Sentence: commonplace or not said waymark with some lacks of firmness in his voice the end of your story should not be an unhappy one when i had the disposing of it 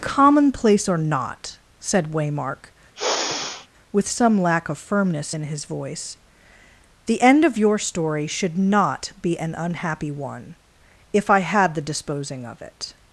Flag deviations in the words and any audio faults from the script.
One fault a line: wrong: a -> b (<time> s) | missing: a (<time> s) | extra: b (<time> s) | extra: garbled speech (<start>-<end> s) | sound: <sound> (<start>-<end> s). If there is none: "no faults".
sound: sigh (2.9-3.7 s)
wrong: lacks -> lack (4.4 s)
wrong: when -> if (11.1 s)